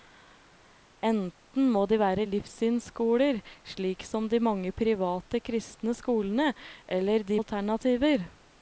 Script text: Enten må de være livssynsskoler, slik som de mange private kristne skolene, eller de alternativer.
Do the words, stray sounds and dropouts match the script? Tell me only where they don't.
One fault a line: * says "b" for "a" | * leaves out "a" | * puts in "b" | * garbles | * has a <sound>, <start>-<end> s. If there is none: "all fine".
all fine